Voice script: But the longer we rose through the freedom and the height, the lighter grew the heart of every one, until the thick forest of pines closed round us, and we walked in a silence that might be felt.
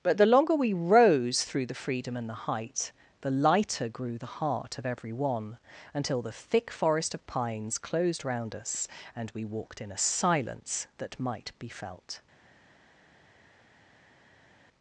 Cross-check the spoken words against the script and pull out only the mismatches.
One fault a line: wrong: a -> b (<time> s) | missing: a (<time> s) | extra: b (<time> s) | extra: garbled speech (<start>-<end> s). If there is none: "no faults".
no faults